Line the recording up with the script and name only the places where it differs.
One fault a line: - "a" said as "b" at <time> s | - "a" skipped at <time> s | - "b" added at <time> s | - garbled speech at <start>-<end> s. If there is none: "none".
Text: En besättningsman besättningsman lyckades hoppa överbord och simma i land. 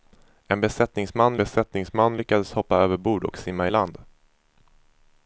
none